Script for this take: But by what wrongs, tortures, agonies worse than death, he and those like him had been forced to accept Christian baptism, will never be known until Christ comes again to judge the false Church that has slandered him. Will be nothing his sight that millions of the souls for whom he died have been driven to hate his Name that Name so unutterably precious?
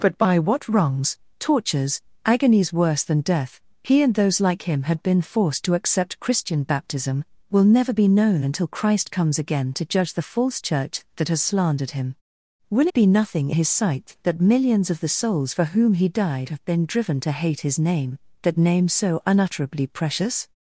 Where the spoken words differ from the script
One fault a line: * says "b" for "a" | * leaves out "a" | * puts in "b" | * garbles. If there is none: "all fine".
all fine